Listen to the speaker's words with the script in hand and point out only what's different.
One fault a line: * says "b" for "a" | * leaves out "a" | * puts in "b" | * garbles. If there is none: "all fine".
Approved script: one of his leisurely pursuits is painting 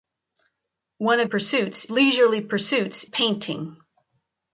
* says "pursuits" for "his"
* leaves out "is"